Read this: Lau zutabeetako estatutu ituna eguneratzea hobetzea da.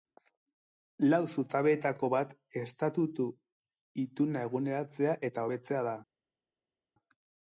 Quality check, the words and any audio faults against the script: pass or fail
fail